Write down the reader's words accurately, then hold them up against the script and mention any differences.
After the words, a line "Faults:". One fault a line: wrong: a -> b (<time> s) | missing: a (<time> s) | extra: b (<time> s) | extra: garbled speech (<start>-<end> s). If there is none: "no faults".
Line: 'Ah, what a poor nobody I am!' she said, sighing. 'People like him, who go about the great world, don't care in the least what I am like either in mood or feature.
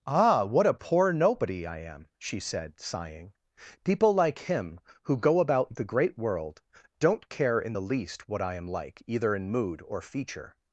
'Ah, what a poor nobody I am!' she said, sighing. 'People like him, who go about the great world, don't care in the least what I am like either in mood or feature.
Faults:
no faults